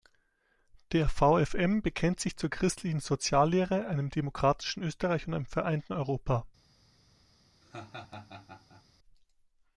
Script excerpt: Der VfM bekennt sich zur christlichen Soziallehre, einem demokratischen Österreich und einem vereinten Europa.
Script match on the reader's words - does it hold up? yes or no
yes